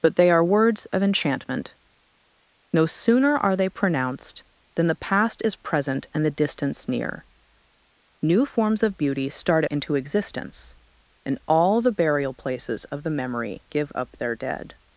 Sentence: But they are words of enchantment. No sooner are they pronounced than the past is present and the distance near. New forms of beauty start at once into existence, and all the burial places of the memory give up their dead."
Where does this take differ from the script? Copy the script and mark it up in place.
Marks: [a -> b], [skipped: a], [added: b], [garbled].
But they are words of enchantment. No sooner are they pronounced than the past is present and the distance near. New forms of beauty start [skipped: at once] into existence, and all the burial places of the memory give up their dead."